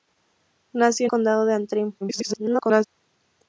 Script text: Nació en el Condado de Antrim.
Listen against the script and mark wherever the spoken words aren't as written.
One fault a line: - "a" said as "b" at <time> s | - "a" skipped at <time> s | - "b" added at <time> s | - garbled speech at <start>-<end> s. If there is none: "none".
- "el" skipped at 1.1 s
- garbled speech at 2.0-2.9 s